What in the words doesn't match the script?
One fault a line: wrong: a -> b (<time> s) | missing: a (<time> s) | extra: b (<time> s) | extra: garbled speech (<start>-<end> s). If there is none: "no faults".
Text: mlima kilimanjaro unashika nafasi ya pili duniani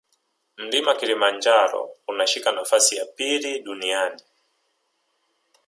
no faults